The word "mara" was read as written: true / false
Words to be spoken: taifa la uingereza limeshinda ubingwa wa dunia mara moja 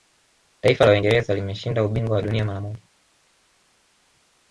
true